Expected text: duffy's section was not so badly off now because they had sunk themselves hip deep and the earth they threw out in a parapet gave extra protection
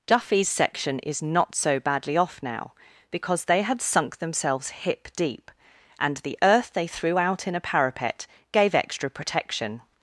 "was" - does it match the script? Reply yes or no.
no